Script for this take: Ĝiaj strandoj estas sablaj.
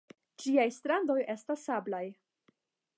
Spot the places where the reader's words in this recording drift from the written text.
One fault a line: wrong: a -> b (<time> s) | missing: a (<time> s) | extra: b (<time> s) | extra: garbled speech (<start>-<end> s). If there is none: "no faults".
no faults